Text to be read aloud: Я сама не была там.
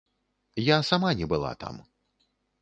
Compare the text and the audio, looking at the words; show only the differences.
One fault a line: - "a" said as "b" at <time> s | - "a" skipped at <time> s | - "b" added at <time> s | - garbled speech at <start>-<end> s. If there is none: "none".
none